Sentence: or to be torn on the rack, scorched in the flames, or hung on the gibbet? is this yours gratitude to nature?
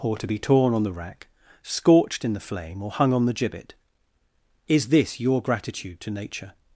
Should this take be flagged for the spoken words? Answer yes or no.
yes